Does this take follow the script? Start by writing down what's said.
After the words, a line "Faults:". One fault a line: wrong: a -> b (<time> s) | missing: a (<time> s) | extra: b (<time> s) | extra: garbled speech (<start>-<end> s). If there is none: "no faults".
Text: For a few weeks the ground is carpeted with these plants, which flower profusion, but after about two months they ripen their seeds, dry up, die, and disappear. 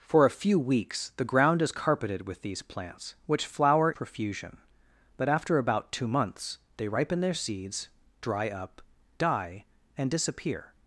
For a few weeks the ground is carpeted with these plants, which flower profusion, but after about two months they ripen their seeds, dry up, die, and disappear.
Faults:
no faults